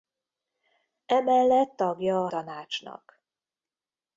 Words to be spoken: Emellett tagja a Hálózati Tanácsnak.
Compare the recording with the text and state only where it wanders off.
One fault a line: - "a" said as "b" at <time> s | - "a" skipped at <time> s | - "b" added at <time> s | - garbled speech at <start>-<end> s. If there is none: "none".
- "Hálózati" skipped at 2.3 s